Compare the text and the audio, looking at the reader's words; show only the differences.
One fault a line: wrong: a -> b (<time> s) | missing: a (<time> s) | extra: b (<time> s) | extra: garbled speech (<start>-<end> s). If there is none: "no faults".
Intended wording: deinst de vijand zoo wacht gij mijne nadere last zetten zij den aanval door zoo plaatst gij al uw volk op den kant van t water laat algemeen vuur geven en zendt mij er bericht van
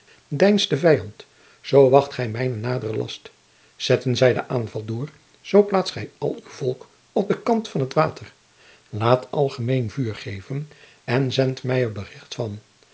no faults